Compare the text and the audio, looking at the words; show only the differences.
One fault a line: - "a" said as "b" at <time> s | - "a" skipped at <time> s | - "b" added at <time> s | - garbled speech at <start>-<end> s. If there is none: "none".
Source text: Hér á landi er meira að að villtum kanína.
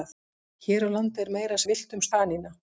none